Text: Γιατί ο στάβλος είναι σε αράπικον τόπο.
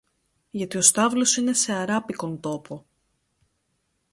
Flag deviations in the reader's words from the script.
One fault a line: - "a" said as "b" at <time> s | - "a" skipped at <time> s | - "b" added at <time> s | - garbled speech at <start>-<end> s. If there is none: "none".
none